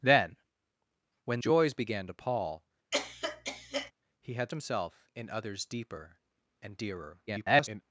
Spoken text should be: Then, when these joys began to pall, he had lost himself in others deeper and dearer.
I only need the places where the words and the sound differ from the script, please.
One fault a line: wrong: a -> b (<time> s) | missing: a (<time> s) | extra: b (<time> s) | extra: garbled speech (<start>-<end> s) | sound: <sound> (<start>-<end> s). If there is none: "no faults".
missing: these (1.4 s)
sound: cough (2.9-3.9 s)
missing: lost (4.5 s)
extra: garbled speech (7.3-7.8 s)